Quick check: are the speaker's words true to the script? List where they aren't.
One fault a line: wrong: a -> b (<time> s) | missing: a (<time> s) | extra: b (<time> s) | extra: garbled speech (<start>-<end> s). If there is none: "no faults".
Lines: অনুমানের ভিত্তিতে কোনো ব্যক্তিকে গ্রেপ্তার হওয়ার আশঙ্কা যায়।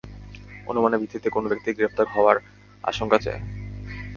no faults